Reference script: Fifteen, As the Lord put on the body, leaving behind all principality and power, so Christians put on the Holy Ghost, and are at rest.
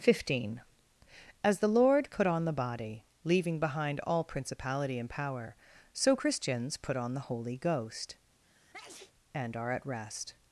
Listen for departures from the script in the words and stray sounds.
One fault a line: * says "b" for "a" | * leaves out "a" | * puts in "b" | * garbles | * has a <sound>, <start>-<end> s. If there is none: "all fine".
* has a sneeze, 8.4-9.1 s